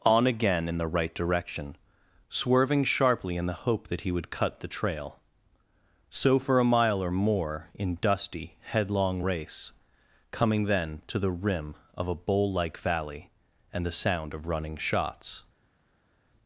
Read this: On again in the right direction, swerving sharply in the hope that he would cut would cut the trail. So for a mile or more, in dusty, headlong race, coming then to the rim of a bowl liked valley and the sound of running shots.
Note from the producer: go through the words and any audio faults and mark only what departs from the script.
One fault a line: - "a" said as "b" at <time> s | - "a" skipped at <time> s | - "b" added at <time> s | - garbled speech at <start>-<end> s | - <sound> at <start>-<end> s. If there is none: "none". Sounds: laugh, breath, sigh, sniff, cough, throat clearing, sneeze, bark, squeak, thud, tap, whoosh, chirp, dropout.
- "would cut" skipped at 4.6 s
- "liked" said as "like" at 12.5 s